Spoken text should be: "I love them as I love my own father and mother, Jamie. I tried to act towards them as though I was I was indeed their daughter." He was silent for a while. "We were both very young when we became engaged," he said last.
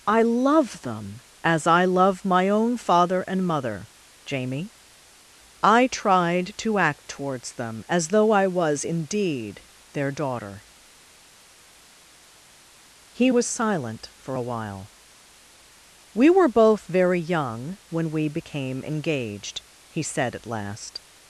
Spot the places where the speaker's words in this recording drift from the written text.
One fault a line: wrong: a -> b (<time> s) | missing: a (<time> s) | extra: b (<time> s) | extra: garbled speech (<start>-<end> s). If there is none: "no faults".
missing: I was (8.8 s)
extra: at (20.4 s)